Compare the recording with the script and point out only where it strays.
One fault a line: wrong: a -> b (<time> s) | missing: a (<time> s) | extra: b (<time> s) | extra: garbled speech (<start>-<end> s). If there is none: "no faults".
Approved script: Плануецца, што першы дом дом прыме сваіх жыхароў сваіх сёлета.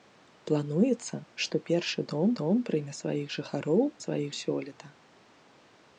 no faults